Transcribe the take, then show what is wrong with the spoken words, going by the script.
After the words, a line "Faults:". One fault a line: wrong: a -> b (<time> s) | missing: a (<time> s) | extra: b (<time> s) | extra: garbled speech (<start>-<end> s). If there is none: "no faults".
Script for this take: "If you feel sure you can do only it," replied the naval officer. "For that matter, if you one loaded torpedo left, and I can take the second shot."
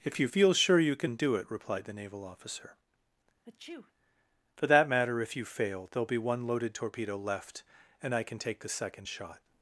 "If you feel sure you can do it," replied the naval officer. "For that matter, if you fail, there'll be one loaded torpedo left, and I can take the second shot."
Faults:
missing: only (1.3 s)
extra: fail there'll be (5.5 s)